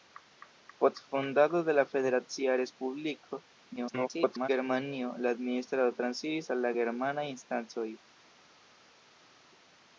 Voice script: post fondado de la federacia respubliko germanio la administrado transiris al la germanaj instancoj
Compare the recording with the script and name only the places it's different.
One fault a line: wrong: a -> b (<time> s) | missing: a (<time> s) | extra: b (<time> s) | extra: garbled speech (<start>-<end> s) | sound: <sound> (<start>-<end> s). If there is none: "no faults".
extra: garbled speech (3.8-4.5 s)